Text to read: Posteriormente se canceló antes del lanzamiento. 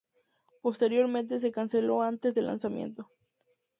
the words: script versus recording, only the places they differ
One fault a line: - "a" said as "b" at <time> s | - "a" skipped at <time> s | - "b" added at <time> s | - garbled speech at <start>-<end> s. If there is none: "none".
none